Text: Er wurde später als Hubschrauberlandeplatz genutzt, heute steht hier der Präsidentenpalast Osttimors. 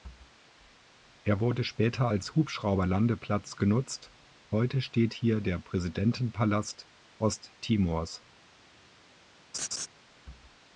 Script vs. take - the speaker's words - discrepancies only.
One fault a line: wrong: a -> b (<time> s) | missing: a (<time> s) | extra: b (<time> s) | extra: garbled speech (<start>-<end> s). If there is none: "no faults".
no faults